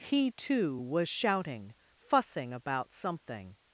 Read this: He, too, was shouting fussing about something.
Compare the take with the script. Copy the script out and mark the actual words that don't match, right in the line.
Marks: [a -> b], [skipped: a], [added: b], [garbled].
He, too, was shouting fussing about something.